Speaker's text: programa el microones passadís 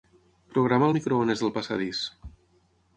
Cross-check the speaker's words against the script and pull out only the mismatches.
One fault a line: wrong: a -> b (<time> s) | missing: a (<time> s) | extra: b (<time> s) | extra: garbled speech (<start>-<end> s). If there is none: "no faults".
extra: del (1.4 s)